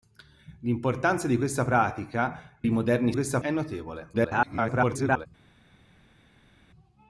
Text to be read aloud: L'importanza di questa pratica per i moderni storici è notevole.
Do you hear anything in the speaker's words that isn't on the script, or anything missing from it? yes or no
yes